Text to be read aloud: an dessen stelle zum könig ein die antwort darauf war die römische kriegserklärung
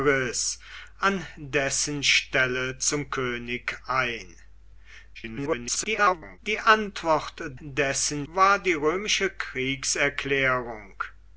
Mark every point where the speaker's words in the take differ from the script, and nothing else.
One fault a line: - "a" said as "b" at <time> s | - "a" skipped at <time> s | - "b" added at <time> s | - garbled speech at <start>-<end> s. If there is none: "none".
- garbled speech at 5.1-6.4 s
- "darauf" said as "dessen" at 7.6 s